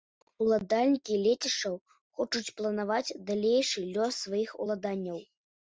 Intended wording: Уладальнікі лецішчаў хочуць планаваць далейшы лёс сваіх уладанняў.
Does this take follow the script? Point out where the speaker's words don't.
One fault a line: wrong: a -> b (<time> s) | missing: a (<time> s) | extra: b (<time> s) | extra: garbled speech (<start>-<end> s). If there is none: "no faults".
no faults